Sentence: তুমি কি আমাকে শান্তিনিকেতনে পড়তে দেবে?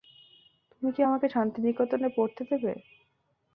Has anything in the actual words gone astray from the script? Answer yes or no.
no